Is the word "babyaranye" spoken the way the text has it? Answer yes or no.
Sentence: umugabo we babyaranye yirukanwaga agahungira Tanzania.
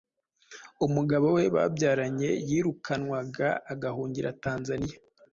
yes